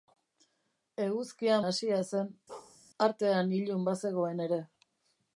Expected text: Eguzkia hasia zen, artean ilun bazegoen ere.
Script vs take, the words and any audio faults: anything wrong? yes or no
yes